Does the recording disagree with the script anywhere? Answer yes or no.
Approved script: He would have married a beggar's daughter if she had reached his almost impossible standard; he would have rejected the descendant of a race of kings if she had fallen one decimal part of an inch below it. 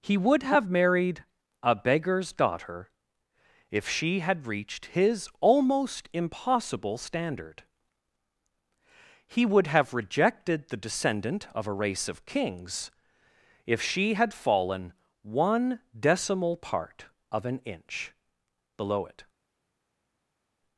no